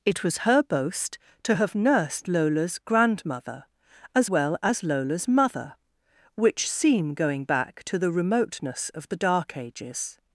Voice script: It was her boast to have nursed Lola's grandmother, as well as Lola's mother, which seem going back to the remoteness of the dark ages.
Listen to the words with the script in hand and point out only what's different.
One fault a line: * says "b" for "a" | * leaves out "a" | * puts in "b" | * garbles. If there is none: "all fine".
all fine